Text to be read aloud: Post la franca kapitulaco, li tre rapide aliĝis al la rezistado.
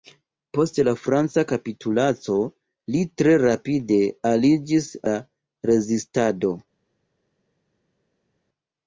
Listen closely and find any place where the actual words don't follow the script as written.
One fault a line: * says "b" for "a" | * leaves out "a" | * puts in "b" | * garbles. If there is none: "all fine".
* leaves out "al"